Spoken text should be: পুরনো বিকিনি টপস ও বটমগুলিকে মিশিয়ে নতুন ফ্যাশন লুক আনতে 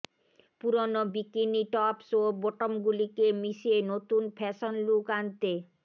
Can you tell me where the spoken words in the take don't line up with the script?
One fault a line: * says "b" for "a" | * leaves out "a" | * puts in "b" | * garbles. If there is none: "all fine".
all fine